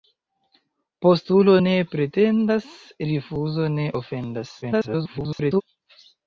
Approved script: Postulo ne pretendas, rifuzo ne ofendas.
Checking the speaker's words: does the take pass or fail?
fail